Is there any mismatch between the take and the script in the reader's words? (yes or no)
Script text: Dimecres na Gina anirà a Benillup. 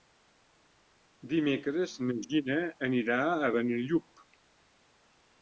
no